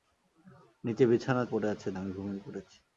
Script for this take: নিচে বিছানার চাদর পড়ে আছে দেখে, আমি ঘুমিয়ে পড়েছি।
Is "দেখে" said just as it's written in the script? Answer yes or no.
no